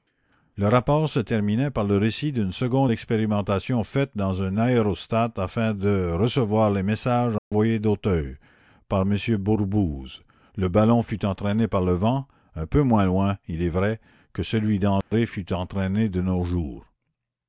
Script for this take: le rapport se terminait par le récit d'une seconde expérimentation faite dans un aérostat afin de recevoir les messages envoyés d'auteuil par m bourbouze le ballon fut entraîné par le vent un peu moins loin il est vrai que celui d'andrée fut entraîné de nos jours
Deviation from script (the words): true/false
false